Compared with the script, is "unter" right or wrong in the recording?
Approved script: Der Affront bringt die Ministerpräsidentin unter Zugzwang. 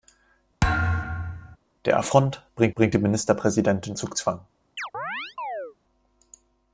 wrong